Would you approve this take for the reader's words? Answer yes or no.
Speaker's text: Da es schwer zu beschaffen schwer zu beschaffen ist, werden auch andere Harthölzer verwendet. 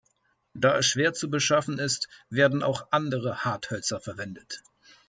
no